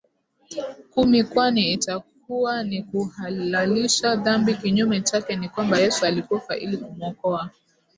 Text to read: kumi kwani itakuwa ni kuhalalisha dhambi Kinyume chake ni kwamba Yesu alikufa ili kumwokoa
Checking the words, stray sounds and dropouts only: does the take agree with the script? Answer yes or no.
yes